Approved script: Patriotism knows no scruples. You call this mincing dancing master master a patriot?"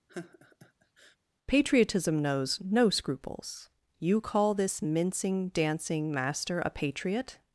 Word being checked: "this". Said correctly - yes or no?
yes